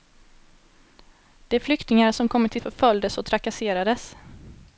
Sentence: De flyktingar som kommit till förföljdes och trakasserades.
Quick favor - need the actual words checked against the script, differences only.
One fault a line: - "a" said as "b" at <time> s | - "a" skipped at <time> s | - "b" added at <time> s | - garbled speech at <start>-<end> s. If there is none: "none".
none